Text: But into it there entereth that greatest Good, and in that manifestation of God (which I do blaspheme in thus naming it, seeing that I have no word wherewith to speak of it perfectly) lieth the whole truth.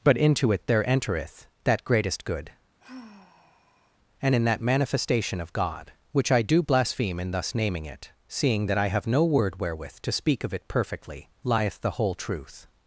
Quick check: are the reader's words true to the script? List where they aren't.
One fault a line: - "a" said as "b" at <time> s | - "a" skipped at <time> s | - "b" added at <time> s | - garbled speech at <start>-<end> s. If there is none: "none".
none